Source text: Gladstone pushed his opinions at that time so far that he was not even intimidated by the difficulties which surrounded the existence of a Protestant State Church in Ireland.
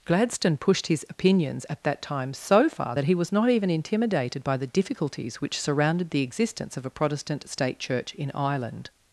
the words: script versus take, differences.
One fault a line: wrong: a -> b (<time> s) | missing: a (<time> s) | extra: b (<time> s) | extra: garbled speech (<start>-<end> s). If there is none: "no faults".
no faults